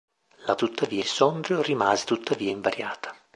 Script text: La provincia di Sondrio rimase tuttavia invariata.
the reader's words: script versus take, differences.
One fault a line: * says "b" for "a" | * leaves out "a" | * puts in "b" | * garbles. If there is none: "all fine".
* says "tuttavia" for "provincia"